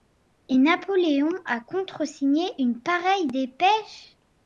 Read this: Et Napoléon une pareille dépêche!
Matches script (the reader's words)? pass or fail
fail